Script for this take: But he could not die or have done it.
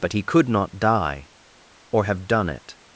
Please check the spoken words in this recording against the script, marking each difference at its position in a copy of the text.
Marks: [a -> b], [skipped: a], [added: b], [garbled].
But he could not die or have done it.